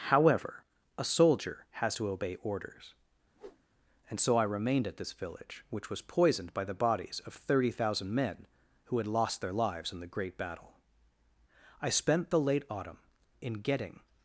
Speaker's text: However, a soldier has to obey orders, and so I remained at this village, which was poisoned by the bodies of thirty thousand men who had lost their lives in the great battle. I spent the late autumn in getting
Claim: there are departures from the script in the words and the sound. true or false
true